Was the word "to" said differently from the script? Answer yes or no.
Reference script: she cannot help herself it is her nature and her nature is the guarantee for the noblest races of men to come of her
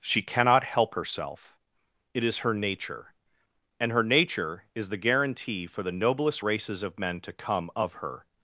no